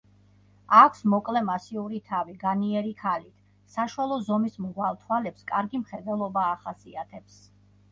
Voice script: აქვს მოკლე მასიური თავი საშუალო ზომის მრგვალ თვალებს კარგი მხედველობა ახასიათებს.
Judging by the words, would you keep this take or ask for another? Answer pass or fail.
fail